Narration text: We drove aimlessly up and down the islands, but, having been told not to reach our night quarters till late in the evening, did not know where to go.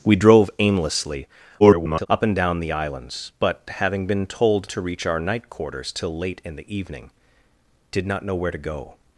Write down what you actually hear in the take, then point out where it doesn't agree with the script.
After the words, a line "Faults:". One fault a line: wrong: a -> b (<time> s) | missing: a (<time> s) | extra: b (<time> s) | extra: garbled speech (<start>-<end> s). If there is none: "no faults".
We drove aimlessly [garbled] up and down the islands, but, having been told to reach our night quarters till late in the evening, did not know where to go.
Faults:
extra: garbled speech (1.6-2.1 s)
missing: not (4.7 s)